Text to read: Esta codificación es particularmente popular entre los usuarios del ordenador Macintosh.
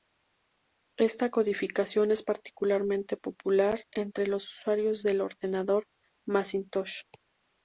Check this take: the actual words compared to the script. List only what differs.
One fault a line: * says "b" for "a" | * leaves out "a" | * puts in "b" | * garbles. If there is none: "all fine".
all fine